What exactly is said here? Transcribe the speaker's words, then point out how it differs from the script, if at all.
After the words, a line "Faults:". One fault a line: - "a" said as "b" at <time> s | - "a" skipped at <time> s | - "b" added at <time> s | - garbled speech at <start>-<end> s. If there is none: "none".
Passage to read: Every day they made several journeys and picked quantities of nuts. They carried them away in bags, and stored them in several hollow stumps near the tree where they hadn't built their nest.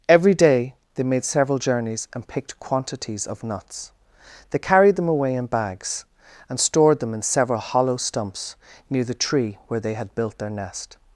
Every day they made several journeys and picked quantities of nuts. They carried them away in bags, and stored them in several hollow stumps near the tree where they had built their nest.
Faults:
- "hadn't" said as "had" at 9.9 s